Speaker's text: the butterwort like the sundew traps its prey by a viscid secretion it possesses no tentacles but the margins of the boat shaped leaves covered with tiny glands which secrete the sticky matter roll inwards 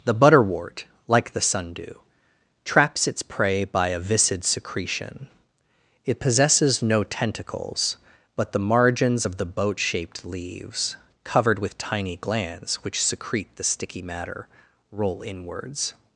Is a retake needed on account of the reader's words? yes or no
no